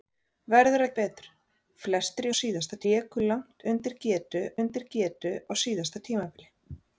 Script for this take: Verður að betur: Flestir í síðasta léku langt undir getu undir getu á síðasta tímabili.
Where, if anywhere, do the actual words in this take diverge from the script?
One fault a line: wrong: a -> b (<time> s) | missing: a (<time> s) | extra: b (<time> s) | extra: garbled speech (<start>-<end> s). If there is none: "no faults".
no faults